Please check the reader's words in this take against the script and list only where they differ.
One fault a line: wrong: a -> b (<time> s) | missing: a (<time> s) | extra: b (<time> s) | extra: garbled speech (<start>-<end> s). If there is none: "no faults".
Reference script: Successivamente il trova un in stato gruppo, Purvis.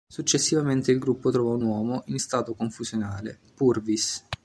extra: gruppo (1.0 s)
extra: uomo (1.6 s)
wrong: gruppo -> confusionale (2.5 s)